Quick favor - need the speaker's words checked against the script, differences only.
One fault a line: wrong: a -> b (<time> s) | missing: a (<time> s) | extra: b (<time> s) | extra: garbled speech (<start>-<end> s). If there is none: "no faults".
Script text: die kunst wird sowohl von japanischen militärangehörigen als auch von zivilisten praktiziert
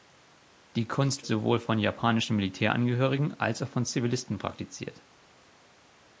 missing: wird (1.2 s)